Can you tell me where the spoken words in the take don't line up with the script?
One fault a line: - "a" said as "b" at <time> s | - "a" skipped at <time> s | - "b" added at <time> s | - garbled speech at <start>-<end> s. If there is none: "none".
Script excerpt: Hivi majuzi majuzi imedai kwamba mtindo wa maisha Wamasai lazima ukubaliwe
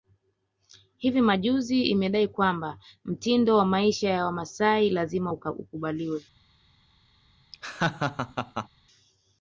- "majuzi" skipped at 1.8 s
- "ya" added at 4.1 s